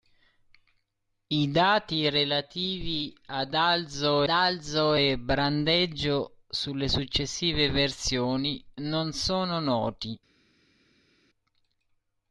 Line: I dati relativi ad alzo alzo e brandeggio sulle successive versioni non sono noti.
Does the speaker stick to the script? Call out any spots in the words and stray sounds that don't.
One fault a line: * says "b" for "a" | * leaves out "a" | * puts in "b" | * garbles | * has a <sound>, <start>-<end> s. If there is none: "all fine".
all fine